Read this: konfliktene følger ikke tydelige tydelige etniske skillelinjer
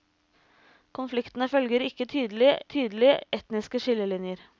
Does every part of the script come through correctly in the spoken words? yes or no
yes